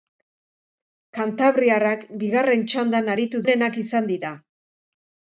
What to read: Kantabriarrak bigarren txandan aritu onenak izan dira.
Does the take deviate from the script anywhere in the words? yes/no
no